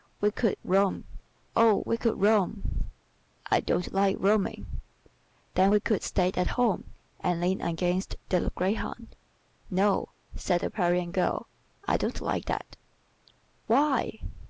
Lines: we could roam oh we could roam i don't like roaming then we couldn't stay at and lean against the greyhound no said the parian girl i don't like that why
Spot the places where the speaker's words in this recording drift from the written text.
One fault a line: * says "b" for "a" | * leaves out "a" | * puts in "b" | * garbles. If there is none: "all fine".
* says "could" for "couldn't"
* puts in "home"